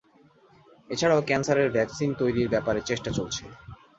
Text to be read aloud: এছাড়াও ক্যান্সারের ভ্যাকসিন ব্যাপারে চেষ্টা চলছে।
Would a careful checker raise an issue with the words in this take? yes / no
yes